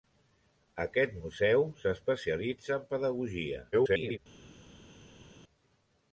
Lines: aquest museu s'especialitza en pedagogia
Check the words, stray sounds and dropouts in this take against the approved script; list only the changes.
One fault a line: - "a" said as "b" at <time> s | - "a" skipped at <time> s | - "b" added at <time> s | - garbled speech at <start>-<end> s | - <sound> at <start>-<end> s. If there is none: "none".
- garbled speech at 3.7-4.2 s